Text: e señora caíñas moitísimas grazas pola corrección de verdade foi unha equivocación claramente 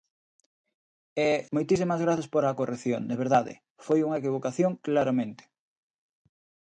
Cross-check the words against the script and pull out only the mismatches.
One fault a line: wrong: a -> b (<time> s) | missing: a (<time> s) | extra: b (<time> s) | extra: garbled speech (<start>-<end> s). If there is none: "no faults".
missing: señora caíñas (1.3 s)